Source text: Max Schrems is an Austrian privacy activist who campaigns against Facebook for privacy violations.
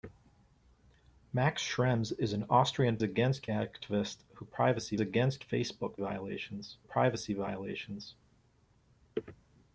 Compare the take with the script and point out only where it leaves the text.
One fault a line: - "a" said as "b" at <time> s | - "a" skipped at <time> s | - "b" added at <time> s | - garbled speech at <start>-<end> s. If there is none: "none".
- "privacy" said as "against" at 3.0 s
- "campaigns" said as "privacy" at 4.4 s
- "for" said as "violations" at 6.0 s